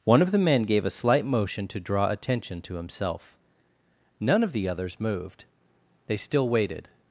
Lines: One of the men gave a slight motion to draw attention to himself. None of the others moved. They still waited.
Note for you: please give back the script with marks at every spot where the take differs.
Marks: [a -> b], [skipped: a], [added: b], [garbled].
One of the men gave a slight motion to draw attention to himself. None of the others moved. They still waited.